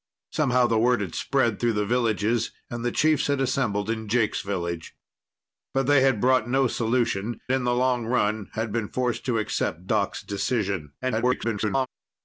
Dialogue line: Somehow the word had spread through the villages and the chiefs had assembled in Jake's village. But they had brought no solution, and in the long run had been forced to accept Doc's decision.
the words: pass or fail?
fail